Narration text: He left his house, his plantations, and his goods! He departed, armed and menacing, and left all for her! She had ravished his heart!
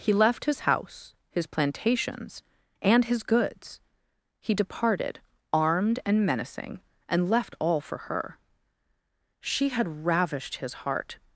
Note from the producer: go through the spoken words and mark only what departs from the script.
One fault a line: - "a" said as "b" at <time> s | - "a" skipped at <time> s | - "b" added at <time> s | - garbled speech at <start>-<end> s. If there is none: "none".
none